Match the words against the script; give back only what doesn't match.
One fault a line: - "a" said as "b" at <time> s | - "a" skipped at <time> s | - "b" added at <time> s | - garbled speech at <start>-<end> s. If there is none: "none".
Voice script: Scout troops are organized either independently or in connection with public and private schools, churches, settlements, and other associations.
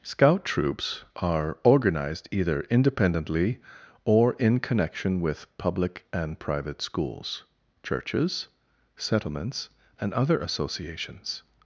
none